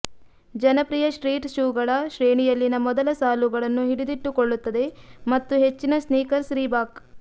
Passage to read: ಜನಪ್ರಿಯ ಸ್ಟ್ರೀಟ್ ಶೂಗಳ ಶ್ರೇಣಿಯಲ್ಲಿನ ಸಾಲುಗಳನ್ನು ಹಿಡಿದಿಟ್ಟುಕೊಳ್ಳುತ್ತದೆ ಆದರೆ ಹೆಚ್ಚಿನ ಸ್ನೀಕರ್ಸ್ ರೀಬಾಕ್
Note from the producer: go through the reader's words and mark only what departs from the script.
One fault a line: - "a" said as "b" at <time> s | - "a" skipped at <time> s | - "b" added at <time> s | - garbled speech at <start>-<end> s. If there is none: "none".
- "ಮೊದಲ" added at 2.9 s
- "ಆದರೆ" said as "ಮತ್ತು" at 5.3 s